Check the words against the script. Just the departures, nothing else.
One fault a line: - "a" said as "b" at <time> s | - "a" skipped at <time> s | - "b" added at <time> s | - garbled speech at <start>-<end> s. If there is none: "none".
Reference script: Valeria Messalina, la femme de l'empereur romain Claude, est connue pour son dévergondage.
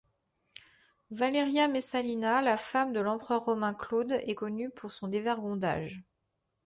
none